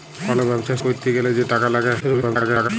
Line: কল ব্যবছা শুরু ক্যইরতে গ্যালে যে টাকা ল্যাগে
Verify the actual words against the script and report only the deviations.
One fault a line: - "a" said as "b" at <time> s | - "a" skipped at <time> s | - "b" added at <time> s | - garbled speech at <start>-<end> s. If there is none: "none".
- "শুরু" skipped at 0.7 s
- garbled speech at 2.0-2.7 s